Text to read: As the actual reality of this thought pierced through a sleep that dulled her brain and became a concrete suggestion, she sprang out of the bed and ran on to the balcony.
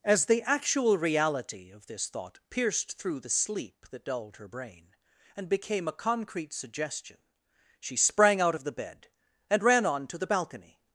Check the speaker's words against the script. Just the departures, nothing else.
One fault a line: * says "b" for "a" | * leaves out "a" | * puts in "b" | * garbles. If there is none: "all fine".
* says "the" for "a"